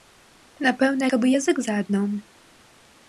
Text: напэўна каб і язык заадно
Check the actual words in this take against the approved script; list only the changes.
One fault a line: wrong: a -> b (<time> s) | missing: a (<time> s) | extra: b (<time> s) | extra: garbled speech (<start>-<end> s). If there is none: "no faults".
no faults